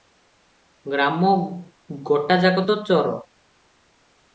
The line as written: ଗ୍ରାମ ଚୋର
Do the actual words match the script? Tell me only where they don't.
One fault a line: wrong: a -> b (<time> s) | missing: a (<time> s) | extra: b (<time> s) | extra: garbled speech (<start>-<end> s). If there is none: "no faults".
extra: ଗୋଟାଯାକ ତ (2.0 s)